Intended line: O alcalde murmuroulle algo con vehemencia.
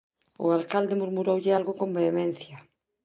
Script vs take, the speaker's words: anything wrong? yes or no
no